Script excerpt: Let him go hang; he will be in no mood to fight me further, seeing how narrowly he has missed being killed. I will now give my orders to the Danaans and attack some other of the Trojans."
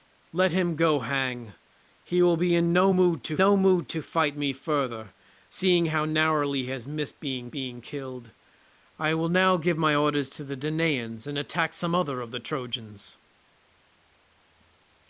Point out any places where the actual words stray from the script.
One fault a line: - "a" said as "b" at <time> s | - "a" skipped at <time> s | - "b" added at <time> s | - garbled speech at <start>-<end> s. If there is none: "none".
- "no mood to" added at 3.4 s
- "being" added at 7.5 s